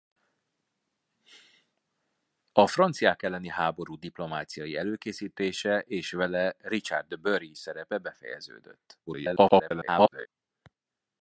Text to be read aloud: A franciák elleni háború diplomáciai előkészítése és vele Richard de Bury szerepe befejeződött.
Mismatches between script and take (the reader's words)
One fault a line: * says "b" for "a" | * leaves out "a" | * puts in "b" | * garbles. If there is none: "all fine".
* garbles